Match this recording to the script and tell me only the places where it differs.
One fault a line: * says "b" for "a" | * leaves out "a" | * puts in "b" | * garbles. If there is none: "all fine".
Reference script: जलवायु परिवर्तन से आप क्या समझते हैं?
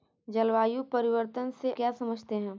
* leaves out "आप"